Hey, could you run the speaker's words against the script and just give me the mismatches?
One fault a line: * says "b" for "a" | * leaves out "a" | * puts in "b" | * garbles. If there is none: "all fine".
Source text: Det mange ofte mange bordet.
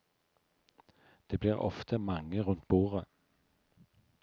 * says "blir" for "mange"
* puts in "rundt"